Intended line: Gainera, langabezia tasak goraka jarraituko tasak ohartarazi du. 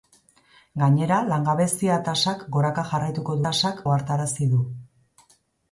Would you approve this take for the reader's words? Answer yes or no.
yes